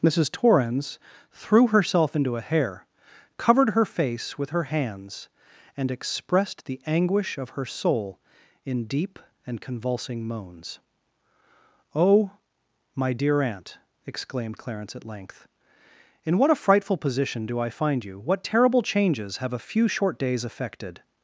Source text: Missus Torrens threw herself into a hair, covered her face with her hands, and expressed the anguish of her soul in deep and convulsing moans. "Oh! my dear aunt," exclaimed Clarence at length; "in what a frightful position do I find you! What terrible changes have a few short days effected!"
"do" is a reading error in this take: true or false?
false